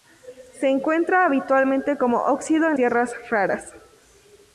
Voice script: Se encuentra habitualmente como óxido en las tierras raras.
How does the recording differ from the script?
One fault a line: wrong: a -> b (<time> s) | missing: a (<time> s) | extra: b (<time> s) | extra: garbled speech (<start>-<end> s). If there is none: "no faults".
missing: las (2.8 s)